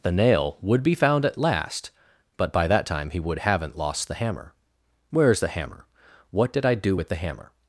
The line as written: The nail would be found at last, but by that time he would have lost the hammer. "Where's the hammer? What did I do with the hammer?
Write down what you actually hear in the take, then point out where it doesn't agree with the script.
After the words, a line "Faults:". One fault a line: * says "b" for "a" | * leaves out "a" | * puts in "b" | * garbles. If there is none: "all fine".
The nail would be found at last, but by that time he would haven't lost the hammer. "Where's the hammer? What did I do with the hammer?
Faults:
* says "haven't" for "have"